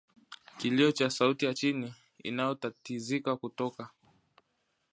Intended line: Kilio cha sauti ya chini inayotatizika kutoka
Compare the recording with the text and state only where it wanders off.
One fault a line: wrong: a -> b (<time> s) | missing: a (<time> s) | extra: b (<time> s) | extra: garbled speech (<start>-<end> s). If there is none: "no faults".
no faults